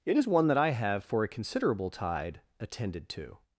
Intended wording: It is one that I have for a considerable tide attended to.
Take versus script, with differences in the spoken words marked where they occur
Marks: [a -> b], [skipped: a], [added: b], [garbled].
It is one that I have for a considerable tide attended to.